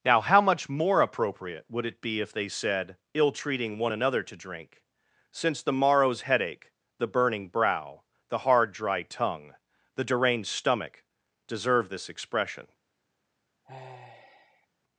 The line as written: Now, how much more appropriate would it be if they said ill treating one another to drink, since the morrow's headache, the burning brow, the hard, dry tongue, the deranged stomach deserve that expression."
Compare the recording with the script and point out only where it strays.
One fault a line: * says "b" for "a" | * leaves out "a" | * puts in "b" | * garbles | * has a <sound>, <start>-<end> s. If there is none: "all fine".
* says "this" for "that"
* has a sigh, 13.6-14.7 s